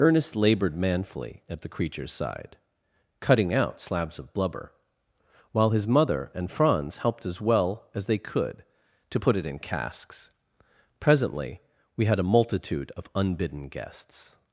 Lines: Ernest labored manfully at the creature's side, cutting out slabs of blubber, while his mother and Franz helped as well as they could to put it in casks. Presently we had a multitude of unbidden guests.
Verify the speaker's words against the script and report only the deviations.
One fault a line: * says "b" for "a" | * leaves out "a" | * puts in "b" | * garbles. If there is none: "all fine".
all fine